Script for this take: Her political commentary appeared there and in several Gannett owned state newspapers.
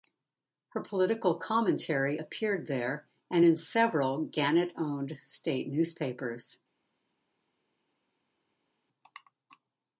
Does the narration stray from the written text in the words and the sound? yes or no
no